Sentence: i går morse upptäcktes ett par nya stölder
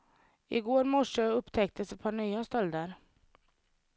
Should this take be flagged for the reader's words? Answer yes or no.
no